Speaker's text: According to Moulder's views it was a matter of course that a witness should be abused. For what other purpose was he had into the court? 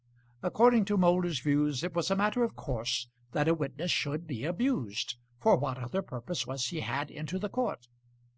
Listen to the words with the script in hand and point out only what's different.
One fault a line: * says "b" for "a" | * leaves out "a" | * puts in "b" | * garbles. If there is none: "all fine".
all fine